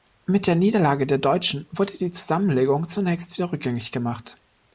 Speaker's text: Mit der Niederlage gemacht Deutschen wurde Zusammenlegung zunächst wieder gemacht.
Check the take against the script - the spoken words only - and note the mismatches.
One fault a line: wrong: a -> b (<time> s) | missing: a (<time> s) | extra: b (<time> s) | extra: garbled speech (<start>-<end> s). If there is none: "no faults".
wrong: gemacht -> der (1.1 s)
extra: die (1.9 s)
extra: rückgängig (3.5 s)